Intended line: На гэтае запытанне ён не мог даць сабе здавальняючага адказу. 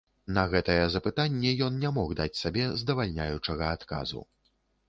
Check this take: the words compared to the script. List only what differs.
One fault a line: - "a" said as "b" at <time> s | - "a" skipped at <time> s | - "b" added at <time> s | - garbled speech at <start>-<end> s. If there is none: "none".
none